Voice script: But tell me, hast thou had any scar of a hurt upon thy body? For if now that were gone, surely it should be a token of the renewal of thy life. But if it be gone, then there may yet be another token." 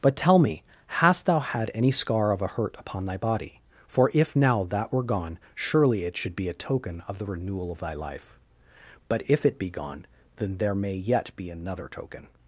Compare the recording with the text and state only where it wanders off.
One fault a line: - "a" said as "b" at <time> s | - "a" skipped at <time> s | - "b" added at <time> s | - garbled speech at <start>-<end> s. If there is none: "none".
none